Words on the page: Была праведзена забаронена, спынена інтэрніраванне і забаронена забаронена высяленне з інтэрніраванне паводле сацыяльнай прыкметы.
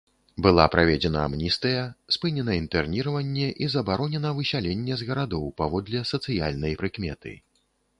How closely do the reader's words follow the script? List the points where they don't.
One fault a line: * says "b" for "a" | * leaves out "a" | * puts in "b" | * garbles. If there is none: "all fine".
* says "амністыя" for "забаронена"
* leaves out "забаронена"
* says "гарадоў" for "інтэрніраванне"